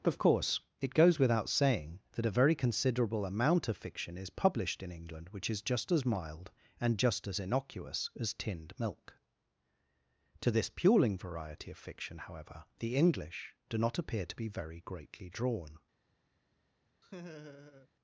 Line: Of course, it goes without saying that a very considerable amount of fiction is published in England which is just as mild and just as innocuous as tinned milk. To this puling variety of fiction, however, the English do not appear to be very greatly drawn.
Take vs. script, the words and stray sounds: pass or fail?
fail